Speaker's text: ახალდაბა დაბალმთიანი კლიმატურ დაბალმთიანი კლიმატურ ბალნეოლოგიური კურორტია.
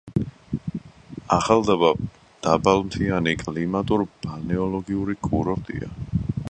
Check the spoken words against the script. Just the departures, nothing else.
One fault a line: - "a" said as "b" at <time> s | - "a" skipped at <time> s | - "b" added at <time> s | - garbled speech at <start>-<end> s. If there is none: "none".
- "დაბალმთიანი კლიმატურ" skipped at 4.1 s